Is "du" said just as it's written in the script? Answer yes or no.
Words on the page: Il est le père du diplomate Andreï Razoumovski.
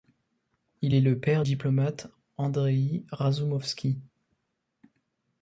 no